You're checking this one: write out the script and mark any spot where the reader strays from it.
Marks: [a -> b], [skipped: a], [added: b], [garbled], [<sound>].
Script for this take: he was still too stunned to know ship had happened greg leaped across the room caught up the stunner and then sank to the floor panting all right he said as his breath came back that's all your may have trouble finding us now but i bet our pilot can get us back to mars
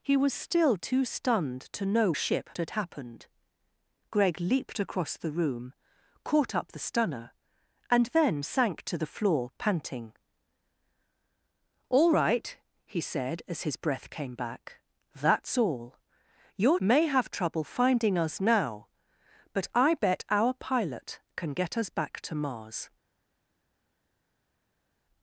he was still too stunned to know ship had happened greg leaped across the room caught up the stunner and then sank to the floor panting all right he said as his breath came back that's all your may have trouble finding us now but i bet our pilot can get us back to mars